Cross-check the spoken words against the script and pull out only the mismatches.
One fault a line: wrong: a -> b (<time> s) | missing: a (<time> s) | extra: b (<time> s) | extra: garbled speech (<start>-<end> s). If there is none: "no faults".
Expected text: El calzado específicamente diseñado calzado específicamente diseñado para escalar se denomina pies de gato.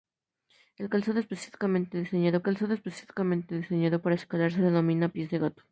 no faults